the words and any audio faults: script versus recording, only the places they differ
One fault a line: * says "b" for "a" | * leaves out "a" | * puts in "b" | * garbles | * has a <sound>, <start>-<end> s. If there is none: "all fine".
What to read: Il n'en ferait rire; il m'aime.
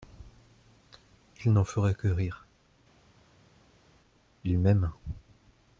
* puts in "que"